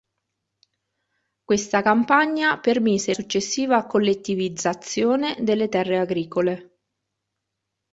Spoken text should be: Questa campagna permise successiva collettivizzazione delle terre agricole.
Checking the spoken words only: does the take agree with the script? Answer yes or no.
yes